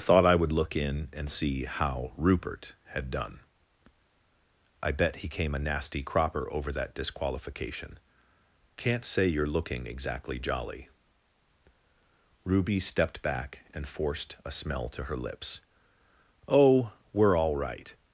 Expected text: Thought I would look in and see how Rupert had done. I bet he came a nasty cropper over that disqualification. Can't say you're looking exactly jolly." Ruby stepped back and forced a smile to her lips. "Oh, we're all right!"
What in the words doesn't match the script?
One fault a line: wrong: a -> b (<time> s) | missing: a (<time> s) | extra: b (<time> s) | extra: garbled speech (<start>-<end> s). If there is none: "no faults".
wrong: smile -> smell (14.5 s)